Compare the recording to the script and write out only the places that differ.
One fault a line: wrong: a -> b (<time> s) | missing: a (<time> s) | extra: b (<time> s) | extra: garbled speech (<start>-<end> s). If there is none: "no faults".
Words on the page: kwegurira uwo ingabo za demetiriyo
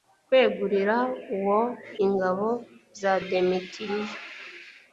no faults